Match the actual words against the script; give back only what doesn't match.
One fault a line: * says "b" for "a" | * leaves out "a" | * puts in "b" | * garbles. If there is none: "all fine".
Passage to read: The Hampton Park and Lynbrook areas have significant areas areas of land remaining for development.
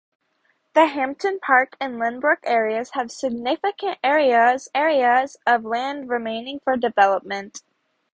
all fine